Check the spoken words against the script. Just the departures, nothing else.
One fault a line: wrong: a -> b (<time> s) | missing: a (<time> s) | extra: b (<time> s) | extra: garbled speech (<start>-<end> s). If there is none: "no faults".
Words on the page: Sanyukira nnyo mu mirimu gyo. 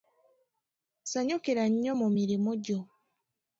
no faults